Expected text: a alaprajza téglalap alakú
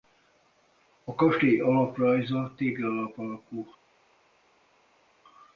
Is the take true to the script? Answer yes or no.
no